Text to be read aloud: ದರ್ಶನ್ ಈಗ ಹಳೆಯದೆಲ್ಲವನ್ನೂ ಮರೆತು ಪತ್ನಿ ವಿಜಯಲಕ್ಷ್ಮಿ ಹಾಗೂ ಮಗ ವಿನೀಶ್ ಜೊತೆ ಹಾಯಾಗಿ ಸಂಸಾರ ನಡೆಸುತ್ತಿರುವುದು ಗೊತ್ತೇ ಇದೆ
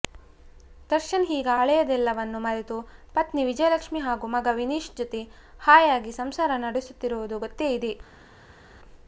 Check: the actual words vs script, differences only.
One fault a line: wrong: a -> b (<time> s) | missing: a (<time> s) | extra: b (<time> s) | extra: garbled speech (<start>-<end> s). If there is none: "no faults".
no faults